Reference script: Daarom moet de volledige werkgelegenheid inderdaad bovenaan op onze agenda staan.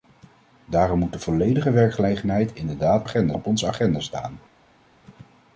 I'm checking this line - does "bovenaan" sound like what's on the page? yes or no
no